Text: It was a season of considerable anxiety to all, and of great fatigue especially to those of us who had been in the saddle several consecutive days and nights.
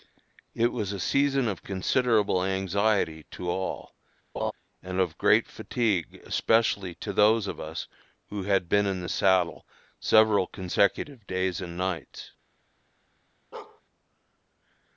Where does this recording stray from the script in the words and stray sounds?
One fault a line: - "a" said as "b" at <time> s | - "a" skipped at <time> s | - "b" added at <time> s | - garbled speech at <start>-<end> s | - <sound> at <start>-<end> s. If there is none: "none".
- laugh at 4.4-4.5 s
- bark at 13.5-13.8 s